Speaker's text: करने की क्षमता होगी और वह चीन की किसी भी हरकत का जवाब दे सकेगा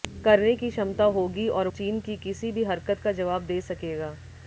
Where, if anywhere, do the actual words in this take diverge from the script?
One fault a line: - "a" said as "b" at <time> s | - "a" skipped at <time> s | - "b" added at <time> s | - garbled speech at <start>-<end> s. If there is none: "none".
- "वह" skipped at 1.7 s